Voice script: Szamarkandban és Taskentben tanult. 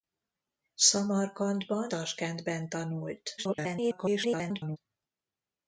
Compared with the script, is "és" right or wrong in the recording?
wrong